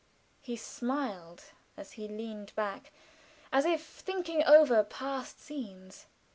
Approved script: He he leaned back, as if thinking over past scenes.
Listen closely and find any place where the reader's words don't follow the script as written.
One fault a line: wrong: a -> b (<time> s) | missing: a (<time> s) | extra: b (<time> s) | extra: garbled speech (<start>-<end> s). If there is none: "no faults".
extra: smiled as (0.6 s)